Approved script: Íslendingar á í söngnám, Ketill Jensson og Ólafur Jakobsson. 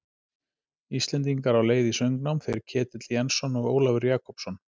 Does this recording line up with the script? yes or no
no